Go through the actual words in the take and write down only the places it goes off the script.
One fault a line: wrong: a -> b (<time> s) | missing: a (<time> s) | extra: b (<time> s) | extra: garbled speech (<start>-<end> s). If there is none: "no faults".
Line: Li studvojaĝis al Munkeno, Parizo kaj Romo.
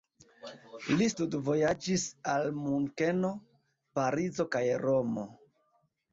no faults